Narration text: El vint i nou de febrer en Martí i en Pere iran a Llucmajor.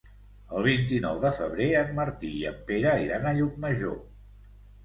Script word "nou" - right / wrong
right